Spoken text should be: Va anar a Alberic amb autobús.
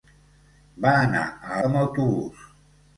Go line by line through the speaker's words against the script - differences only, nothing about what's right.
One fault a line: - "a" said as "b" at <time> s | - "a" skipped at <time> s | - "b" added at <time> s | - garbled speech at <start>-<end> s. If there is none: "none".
- "Alberic" skipped at 1.6 s